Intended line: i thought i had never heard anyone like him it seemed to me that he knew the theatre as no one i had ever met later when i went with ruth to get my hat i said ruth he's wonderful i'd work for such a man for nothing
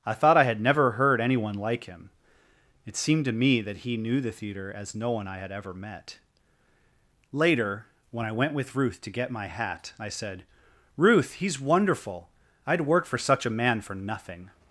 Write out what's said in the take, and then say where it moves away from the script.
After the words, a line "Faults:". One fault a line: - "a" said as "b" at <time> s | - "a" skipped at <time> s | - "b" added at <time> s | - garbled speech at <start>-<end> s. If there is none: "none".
i thought i had never heard anyone like him it seemed to me that he knew the theatre as no one i had ever met later when i went with ruth to get my hat i said ruth he's wonderful i'd work for such a man for nothing
Faults:
none